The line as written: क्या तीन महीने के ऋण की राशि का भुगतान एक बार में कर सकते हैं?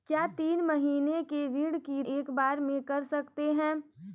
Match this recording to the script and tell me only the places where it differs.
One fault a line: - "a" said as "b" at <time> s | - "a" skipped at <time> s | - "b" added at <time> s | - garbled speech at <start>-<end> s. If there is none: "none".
- "राशि का भुगतान" skipped at 2.0 s